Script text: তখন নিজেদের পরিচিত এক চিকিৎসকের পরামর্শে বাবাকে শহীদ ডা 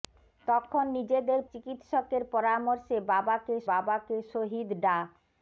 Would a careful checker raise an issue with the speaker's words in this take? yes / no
yes